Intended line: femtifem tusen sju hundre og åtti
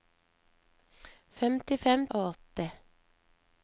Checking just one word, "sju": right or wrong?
wrong